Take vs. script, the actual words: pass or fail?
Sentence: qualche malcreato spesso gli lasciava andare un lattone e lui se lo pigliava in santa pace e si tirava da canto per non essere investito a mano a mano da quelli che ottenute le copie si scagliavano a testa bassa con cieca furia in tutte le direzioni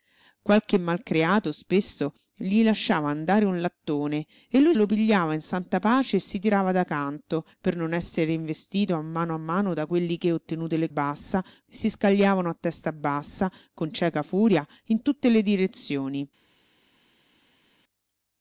fail